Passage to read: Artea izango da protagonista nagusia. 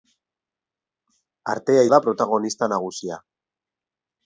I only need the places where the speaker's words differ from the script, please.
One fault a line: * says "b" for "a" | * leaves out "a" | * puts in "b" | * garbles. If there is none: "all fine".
* leaves out "izango"